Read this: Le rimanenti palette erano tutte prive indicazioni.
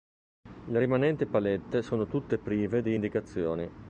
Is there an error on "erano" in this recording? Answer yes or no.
yes